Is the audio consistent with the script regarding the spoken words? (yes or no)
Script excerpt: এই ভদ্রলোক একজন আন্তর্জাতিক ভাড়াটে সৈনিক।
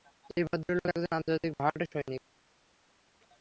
yes